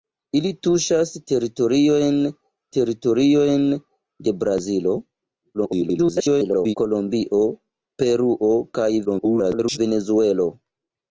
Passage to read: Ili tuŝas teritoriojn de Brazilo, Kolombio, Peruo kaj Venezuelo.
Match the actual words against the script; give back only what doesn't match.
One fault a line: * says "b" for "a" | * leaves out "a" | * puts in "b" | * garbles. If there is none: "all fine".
* puts in "teritoriojn"
* garbles
* garbles